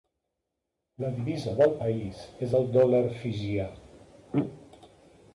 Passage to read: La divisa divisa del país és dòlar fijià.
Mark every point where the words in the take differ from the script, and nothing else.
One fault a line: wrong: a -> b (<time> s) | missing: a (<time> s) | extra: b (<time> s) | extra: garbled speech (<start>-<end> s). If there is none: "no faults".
missing: divisa (1.5 s)
extra: el (2.6 s)